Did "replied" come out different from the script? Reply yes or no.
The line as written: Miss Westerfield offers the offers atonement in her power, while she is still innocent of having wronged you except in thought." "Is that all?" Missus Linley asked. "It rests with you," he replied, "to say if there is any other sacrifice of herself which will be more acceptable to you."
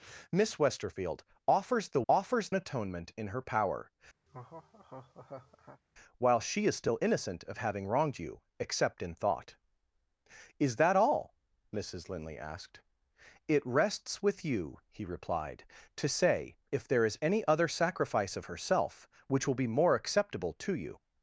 no